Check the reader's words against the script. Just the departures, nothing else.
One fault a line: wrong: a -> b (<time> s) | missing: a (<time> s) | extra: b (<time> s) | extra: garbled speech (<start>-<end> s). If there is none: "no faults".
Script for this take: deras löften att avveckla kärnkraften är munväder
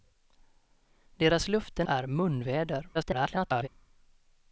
missing: att avveckla kärnkraften (1.9 s)
extra: garbled speech (2.9-3.7 s)